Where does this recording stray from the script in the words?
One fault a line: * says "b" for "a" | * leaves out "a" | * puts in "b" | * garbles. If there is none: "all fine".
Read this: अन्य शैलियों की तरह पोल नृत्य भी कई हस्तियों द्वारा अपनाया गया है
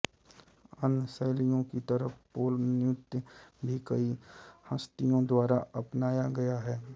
all fine